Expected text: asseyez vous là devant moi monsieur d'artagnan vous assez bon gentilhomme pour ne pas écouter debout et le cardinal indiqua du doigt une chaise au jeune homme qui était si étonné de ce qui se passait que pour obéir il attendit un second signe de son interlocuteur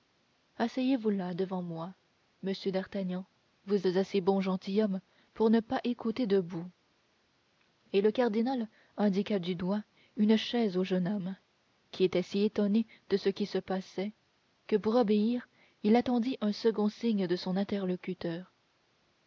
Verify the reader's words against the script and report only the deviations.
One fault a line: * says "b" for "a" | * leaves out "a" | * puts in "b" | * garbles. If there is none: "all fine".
all fine